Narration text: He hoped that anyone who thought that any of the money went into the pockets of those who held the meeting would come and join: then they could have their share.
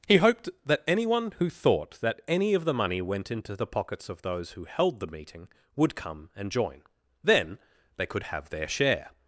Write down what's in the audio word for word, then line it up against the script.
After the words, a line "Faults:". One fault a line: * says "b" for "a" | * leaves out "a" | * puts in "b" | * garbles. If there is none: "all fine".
He hoped that anyone who thought that any of the money went into the pockets of those who held the meeting would come and join: then they could have their share.
Faults:
all fine